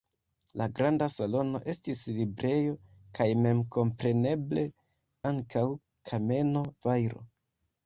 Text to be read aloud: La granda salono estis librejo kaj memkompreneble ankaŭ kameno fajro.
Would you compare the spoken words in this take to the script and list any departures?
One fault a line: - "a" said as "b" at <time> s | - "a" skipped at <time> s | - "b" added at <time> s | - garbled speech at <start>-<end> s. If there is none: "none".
none